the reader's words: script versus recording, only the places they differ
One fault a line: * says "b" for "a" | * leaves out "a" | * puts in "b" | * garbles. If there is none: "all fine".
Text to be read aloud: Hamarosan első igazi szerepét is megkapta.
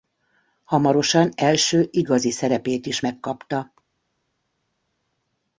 all fine